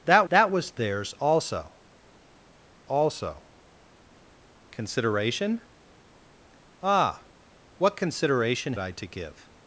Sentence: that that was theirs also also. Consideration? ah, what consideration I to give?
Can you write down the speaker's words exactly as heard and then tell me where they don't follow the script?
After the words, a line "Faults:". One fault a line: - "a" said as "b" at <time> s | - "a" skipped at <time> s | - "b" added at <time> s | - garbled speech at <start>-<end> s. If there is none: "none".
that that was theirs also also. Consideration? ah, what consideration I to give?
Faults:
none